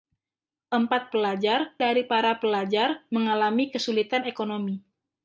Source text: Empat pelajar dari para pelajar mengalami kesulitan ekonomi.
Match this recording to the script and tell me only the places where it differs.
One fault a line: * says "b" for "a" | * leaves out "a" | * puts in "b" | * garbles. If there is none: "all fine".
all fine